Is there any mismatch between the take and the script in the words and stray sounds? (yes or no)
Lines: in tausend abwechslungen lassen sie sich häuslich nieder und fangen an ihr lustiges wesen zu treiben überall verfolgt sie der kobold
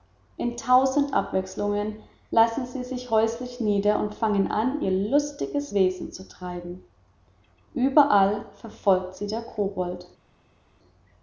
no